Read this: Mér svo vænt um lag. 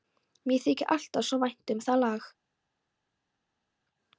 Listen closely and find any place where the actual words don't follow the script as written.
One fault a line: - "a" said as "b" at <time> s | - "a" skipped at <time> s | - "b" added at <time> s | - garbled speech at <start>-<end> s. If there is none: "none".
- "þykir alltaf" added at 0.6 s
- "það" added at 1.9 s